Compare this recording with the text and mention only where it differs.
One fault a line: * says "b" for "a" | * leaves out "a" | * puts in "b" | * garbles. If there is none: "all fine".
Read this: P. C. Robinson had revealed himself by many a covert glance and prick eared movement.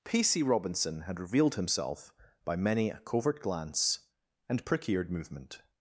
all fine